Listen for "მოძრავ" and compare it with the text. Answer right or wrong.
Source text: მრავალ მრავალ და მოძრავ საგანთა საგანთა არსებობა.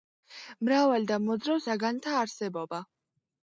right